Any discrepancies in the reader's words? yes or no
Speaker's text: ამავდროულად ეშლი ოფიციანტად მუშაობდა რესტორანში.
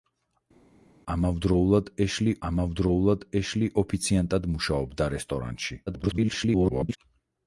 yes